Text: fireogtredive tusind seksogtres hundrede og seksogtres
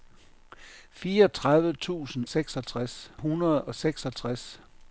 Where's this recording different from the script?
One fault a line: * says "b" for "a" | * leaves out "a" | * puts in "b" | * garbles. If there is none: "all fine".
all fine